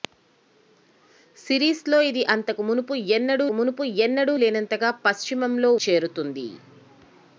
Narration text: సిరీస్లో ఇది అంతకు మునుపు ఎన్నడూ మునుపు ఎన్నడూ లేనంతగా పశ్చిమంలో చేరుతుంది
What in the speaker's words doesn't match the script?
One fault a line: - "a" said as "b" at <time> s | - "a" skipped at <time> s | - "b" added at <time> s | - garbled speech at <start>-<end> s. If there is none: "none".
none